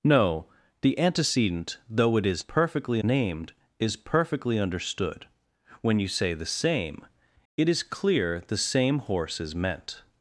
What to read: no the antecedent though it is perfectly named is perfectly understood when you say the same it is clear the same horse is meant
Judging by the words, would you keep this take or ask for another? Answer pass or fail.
pass